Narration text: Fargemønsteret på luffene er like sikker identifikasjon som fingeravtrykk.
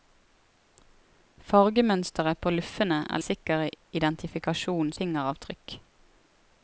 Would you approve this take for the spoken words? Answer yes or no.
no